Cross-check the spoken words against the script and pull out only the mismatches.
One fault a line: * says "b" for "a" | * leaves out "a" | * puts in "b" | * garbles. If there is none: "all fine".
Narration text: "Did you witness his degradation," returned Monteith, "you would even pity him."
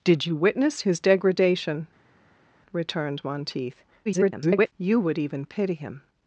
* garbles